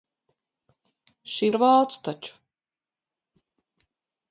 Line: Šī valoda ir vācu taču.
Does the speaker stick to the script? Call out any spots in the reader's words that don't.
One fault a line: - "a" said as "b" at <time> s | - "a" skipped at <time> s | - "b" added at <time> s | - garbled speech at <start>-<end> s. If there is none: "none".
- "valoda" skipped at 1.5 s